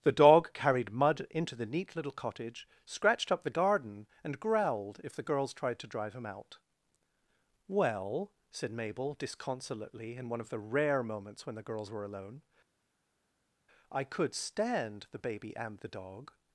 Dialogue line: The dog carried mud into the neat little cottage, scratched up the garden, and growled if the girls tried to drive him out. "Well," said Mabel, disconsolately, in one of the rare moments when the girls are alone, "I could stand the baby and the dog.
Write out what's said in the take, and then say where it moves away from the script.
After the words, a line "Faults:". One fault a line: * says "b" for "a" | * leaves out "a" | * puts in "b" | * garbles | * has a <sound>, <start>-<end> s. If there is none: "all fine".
The dog carried mud into the neat little cottage, scratched up the garden, and growled if the girls tried to drive him out. "Well," said Mabel, disconsolately, in one of the rare moments when the girls were alone, "I could stand the baby and the dog.
Faults:
* says "were" for "are"